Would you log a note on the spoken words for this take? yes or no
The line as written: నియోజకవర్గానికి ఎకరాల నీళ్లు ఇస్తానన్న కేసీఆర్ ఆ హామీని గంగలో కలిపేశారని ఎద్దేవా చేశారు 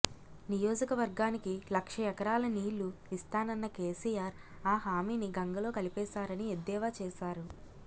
yes